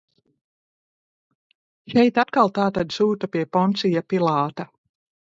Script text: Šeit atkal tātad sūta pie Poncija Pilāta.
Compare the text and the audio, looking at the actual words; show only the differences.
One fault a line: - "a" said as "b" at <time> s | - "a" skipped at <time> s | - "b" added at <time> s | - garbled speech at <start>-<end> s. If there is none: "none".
none